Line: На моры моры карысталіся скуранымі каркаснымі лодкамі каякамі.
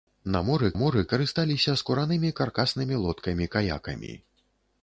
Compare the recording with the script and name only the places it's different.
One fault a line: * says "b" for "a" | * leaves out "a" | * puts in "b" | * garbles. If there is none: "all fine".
all fine